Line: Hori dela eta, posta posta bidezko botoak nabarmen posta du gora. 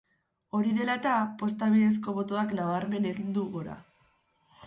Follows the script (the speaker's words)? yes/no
no